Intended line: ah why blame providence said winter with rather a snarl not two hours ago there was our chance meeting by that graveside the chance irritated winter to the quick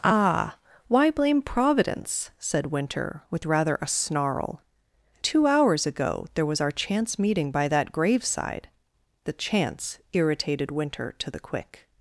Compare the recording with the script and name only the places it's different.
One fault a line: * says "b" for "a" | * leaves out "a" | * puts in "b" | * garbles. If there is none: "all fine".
* leaves out "not"